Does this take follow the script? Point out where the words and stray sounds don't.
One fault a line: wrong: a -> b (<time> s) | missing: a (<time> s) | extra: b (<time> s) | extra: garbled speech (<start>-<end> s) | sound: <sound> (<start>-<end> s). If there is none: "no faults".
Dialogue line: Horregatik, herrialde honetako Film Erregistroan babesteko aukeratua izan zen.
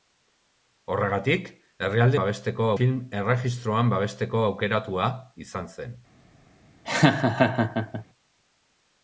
wrong: honetako -> babesteko (2.2 s)
sound: laugh (6.9-8.1 s)